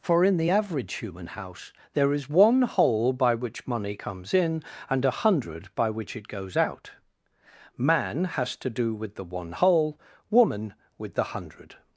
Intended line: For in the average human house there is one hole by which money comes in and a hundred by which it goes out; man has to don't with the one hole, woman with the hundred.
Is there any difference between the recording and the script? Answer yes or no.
yes